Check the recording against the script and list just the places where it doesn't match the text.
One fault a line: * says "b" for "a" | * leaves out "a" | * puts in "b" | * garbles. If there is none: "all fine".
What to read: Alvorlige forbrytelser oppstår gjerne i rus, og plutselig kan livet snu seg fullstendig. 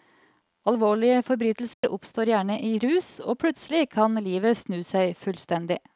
all fine